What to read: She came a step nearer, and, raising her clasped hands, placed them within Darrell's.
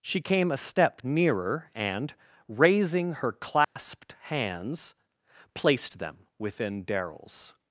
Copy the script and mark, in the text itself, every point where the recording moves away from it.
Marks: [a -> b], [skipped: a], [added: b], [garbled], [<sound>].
She came a step nearer, and, raising her clasped [dropout] hands, placed them within Darrell's.